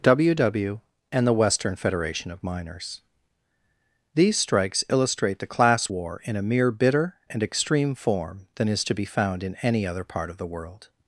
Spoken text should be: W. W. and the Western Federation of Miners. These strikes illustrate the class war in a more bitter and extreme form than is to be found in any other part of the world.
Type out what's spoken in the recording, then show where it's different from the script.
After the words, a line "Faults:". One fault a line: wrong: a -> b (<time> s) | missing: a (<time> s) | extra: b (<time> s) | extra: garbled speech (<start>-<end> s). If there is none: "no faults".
W. W. and the Western Federation of Miners. These strikes illustrate the class war in a mere bitter and extreme form than is to be found in any other part of the world.
Faults:
wrong: more -> mere (6.4 s)